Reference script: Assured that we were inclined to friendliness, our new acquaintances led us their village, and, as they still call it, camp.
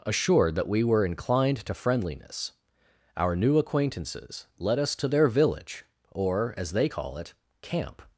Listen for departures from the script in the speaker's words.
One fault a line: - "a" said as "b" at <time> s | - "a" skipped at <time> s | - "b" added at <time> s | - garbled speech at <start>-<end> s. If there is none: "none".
- "to" added at 5.0 s
- "and" said as "or" at 6.1 s
- "still" skipped at 6.9 s